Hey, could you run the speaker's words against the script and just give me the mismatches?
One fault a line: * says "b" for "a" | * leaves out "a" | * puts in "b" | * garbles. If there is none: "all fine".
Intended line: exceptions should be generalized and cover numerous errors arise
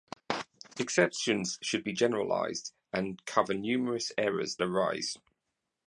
all fine